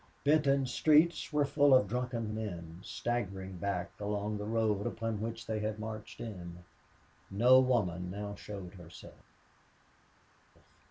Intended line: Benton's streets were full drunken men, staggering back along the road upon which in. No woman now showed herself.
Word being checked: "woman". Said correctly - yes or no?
yes